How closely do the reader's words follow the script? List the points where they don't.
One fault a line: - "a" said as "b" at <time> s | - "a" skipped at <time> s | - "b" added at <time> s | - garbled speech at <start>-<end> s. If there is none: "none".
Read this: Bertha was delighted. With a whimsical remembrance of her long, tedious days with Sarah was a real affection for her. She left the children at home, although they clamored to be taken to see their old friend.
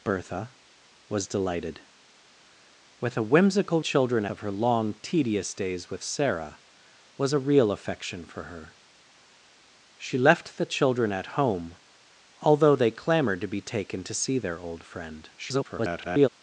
- "remembrance" said as "children" at 3.8 s
- garbled speech at 15.4-16.3 s